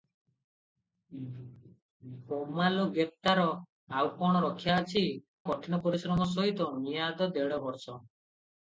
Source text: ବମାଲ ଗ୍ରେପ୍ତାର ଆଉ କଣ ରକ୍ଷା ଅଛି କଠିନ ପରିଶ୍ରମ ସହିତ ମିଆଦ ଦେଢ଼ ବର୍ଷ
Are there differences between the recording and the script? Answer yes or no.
no